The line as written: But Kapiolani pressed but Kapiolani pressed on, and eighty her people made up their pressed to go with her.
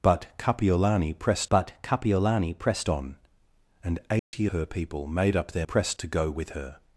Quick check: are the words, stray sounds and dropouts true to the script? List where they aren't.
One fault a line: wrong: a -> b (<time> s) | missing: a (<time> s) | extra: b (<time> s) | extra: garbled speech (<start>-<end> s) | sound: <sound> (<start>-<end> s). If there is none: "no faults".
sound: dropout (4.2-4.3 s)